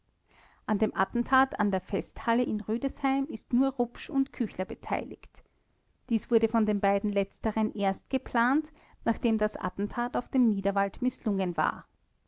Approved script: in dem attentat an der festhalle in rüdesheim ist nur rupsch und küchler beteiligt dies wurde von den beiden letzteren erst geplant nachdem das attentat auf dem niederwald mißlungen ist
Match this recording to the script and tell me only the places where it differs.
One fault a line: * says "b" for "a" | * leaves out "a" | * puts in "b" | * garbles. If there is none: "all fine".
* says "an" for "in"
* says "war" for "ist"